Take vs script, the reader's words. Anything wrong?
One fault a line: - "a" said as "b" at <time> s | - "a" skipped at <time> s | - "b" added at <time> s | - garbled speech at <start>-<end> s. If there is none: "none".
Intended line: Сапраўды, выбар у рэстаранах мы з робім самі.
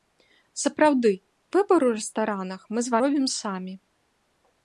none